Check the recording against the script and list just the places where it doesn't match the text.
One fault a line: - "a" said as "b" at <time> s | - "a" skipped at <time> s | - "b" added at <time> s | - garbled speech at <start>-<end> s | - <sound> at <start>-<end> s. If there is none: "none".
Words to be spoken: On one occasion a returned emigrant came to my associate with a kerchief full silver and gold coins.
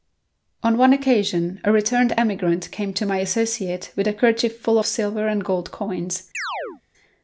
- chirp at 6.3-6.8 s